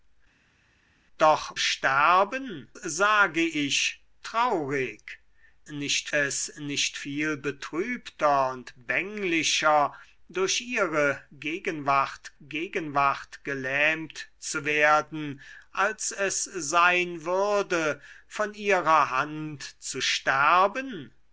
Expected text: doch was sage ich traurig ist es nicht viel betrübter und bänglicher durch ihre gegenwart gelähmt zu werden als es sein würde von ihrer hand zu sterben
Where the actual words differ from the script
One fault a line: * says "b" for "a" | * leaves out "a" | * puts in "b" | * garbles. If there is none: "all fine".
* says "sterben" for "was"
* says "nicht" for "ist"
* puts in "gegenwart"